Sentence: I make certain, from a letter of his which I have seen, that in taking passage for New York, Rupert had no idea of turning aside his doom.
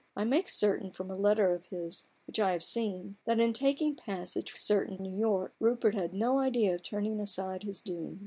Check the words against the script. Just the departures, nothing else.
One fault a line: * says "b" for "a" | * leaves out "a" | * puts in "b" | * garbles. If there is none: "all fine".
* says "certain" for "for"